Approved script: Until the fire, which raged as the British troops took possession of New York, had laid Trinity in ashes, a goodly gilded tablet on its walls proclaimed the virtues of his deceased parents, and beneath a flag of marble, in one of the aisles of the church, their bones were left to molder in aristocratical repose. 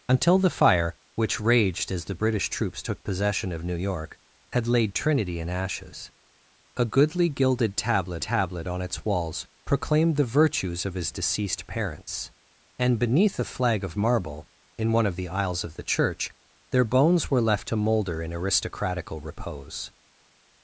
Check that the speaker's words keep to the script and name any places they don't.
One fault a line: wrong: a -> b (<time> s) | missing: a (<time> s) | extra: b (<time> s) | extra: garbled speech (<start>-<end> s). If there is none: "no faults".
extra: tablet (8.2 s)